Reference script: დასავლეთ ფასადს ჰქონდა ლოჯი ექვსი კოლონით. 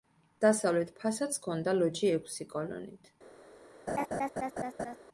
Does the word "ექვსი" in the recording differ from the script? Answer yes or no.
no